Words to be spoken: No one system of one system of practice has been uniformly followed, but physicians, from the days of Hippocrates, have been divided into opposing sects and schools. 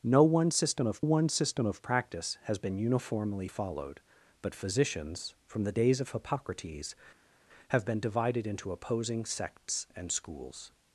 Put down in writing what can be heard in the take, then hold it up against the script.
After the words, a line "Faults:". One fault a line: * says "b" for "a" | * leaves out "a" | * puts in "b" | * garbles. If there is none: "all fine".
No one system of one system of practice has been uniformly followed, but physicians, from the days of Hippocrates, have been divided into opposing sects and schools.
Faults:
all fine